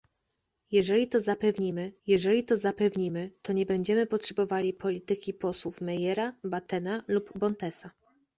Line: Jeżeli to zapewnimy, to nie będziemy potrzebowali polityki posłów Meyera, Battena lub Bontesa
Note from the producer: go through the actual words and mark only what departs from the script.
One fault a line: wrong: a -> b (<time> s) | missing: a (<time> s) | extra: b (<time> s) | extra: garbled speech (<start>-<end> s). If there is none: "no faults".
extra: jeżeli to zapewnimy (2.1 s)